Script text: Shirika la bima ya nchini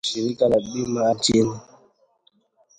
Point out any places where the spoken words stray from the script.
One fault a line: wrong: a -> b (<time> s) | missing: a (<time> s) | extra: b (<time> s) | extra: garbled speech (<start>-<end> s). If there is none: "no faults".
no faults